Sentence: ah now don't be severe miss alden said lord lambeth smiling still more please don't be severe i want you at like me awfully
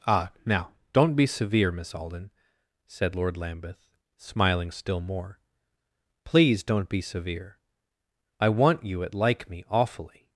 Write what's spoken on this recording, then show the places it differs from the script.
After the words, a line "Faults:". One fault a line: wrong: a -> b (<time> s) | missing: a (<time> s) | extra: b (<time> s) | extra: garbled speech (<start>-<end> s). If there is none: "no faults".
ah now don't be severe miss alden said lord lambeth smiling still more please don't be severe i want you at like me awfully
Faults:
no faults